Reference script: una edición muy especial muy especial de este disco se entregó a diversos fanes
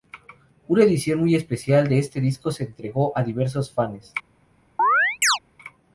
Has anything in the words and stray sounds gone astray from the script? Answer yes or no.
yes